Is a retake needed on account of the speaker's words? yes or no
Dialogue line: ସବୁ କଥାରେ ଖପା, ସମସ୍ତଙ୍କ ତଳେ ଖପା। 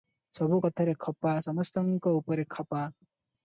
yes